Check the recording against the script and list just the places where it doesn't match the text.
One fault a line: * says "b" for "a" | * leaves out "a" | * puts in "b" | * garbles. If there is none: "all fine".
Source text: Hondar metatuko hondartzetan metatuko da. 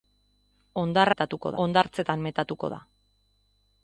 all fine